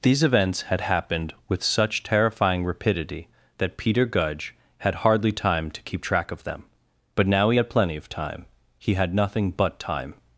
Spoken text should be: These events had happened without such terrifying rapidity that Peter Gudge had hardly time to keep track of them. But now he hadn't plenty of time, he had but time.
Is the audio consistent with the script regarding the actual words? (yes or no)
no